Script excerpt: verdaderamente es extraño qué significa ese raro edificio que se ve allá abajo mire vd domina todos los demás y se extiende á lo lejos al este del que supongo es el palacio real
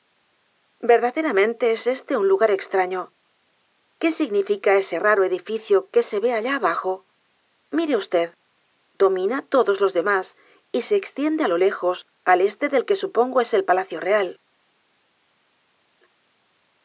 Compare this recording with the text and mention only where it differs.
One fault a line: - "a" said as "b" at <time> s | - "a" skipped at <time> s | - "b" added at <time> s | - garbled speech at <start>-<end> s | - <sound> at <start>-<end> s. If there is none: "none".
- "éste un lugar" added at 1.9 s